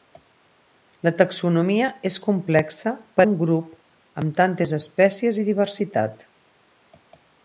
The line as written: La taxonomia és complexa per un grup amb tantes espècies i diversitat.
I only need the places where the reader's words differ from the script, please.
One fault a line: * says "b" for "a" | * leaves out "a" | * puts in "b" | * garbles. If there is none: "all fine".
all fine